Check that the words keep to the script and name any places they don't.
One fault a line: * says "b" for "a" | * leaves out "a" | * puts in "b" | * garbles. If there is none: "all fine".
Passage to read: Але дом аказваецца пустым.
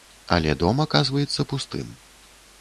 all fine